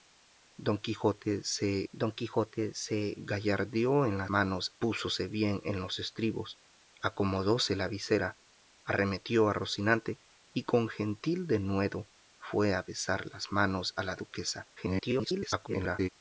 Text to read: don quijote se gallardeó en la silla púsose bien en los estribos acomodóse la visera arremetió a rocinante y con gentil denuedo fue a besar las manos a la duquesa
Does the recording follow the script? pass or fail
fail